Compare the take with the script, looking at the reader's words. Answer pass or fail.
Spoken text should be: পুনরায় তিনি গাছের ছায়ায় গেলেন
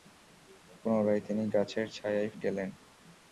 pass